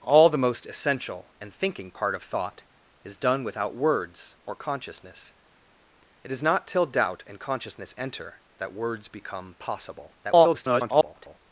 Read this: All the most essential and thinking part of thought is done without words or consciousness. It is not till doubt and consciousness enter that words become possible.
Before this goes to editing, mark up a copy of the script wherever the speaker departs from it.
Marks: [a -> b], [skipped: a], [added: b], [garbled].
All the most essential and thinking part of thought is done without words or consciousness. It is not till doubt and consciousness enter that words become possible. [garbled]